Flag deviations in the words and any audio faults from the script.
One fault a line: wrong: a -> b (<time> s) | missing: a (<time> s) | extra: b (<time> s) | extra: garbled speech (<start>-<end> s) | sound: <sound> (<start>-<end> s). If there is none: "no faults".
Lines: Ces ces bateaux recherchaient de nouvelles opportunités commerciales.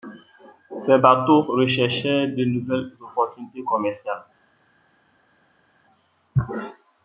missing: ces (1.0 s)